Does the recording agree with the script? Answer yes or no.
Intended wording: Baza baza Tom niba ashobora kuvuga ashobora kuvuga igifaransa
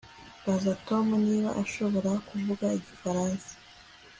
no